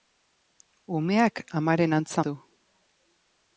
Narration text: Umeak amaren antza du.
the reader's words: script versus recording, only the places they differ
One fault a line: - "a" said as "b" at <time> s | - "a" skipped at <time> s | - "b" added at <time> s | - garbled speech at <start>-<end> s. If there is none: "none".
none